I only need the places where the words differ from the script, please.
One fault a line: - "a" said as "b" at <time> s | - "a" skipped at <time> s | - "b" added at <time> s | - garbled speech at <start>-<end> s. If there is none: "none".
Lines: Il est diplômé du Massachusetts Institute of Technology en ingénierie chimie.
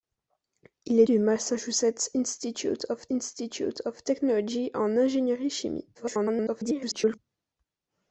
- "diplômé" skipped at 1.1 s
- "Institute of" added at 3.1 s
- garbled speech at 5.9-7.2 s